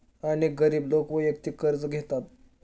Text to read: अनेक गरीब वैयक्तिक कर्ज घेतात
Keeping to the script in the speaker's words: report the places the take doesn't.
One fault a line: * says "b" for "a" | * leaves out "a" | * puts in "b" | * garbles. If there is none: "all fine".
* puts in "लोक"